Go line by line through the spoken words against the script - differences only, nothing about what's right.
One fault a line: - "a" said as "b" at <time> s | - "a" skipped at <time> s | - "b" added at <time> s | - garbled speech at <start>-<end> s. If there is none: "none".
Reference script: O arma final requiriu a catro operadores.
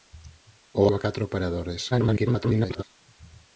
- "arma final requiriu" skipped at 0.8 s
- garbled speech at 1.9-2.8 s